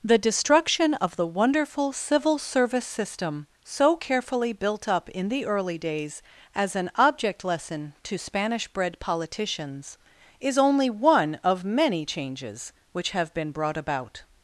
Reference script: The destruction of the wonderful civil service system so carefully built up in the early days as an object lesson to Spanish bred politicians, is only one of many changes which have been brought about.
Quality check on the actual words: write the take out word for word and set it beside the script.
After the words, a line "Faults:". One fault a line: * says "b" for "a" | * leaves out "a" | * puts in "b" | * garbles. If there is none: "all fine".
The destruction of the wonderful civil service system so carefully built up in the early days as an object lesson to Spanish bred politicians, is only one of many changes which have been brought about.
Faults:
all fine